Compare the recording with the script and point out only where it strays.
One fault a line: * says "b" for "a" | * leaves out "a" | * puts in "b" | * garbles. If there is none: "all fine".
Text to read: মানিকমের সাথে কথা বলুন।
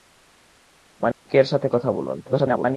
* garbles